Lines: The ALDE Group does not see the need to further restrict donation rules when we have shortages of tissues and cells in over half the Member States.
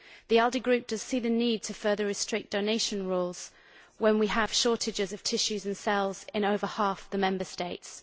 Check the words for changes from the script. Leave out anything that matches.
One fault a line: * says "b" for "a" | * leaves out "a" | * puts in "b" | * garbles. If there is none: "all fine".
* leaves out "not"